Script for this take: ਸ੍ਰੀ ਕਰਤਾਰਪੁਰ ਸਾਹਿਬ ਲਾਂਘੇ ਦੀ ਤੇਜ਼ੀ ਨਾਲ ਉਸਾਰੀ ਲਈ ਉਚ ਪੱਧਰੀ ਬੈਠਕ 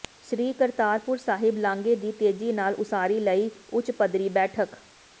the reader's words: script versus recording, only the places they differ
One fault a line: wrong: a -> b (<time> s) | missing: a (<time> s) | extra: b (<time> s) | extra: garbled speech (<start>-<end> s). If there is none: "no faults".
no faults